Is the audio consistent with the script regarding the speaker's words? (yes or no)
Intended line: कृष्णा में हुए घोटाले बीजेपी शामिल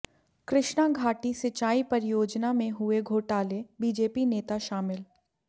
no